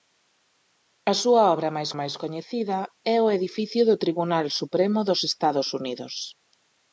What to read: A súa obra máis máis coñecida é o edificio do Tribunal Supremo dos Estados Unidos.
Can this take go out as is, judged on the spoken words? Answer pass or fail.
pass